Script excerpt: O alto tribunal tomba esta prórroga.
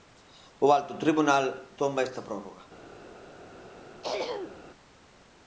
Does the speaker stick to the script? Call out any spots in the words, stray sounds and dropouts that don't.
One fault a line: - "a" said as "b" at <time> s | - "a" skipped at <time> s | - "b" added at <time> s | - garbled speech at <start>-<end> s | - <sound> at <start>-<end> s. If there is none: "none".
- throat clearing at 4.0-4.6 s